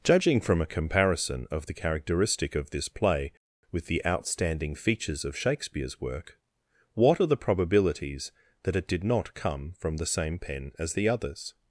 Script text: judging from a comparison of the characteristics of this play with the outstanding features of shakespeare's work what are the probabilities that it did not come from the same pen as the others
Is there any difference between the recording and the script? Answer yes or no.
yes